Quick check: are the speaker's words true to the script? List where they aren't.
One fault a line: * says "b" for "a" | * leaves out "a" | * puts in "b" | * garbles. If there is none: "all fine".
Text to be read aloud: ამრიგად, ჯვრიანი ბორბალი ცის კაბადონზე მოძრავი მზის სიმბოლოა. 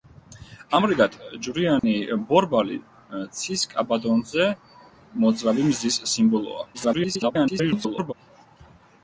* garbles